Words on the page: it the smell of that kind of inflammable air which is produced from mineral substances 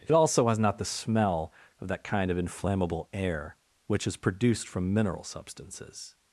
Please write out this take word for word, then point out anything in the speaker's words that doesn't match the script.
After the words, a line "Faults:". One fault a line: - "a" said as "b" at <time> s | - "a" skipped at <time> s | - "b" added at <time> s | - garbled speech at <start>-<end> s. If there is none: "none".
it also has not the smell of that kind of inflammable air which is produced from mineral substances
Faults:
- "also has not" added at 0.1 s